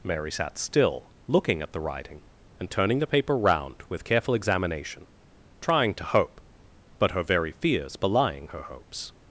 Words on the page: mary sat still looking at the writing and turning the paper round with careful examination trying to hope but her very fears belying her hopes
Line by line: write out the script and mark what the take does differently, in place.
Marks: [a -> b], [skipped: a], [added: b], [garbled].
mary sat still looking at the writing and turning the paper round with careful examination trying to hope but her very fears belying her hopes